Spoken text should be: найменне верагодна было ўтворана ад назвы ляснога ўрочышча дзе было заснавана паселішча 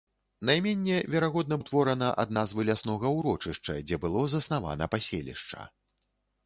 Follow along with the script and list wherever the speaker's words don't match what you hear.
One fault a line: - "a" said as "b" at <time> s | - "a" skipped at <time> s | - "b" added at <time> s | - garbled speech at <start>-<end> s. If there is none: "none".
- "было" skipped at 1.6 s